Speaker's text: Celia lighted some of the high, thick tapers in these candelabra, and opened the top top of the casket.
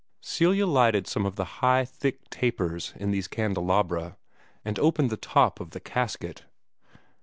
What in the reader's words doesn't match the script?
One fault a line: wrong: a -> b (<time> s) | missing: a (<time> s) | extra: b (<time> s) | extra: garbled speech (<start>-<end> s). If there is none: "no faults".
missing: top (5.6 s)